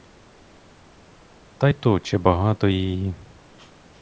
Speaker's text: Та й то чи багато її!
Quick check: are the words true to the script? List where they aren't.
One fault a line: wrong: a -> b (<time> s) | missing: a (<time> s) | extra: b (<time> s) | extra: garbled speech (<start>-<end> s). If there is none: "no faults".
no faults